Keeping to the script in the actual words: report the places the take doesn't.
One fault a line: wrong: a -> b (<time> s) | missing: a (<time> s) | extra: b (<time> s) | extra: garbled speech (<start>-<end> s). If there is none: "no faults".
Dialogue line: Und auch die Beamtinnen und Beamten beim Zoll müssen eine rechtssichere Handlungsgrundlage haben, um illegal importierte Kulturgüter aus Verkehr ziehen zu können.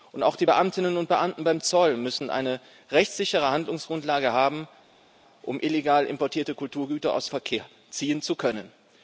no faults